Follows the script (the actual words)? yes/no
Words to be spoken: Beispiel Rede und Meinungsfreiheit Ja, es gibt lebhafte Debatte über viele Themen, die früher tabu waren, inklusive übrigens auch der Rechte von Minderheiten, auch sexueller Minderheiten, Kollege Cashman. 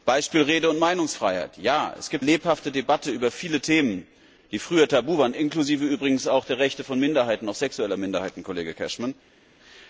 yes